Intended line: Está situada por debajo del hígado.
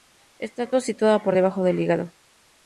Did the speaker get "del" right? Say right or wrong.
right